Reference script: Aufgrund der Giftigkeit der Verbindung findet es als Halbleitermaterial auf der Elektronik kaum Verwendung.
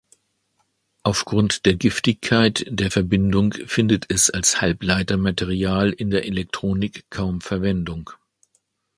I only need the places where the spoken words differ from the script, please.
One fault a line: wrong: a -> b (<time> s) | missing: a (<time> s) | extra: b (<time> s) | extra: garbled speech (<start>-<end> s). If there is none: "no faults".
wrong: auf -> in (5.9 s)